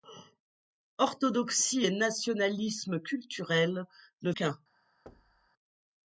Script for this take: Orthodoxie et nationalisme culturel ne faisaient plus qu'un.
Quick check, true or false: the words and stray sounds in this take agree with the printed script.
false